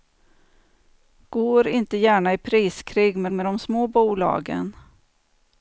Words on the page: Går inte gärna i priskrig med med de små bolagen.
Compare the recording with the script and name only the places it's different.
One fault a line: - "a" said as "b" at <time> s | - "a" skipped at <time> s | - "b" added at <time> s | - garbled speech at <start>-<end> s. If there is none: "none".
none